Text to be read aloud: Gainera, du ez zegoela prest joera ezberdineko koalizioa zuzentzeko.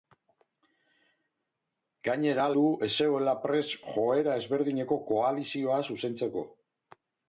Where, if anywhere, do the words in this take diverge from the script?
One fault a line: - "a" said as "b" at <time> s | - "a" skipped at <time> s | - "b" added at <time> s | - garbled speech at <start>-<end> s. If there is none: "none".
none